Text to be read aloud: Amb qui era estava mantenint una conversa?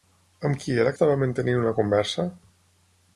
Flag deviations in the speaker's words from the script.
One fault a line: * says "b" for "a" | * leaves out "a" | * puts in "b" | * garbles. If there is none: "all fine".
all fine